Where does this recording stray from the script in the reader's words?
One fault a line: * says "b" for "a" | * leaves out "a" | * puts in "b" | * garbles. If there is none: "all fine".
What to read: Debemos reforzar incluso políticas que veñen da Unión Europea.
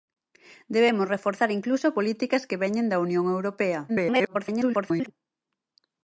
* garbles